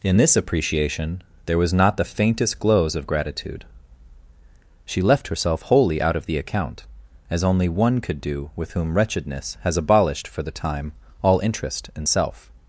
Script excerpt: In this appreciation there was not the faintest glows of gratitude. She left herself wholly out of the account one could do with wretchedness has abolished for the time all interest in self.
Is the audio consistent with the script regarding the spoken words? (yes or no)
no